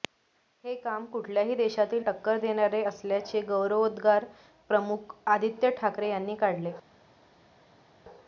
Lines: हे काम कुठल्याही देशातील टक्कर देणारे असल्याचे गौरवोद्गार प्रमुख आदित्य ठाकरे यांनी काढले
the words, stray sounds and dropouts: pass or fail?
pass